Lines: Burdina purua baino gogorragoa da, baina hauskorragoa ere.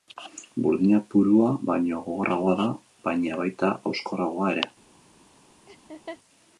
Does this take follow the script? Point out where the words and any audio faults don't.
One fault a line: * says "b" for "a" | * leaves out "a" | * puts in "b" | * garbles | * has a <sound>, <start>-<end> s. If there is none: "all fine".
* puts in "baita"
* has a laugh, 5.7-6.2 s